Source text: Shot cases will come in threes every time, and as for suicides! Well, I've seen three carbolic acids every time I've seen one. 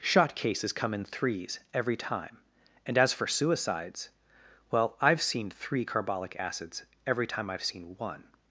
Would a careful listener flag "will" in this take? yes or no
yes